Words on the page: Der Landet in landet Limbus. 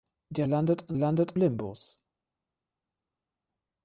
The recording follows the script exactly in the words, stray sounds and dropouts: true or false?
true